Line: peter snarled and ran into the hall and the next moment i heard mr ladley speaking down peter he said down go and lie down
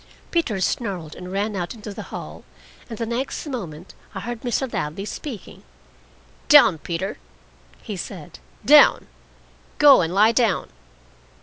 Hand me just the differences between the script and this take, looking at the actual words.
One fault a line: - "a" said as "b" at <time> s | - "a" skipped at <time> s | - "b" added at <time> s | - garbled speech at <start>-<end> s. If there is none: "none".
- "out" added at 1.6 s